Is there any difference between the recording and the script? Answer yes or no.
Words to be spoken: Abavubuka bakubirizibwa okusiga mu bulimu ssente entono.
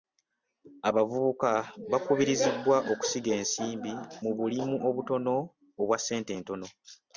yes